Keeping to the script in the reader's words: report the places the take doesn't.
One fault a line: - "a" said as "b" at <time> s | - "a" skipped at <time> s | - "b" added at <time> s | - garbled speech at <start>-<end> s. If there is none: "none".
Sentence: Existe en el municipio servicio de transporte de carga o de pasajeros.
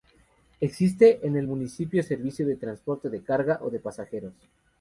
none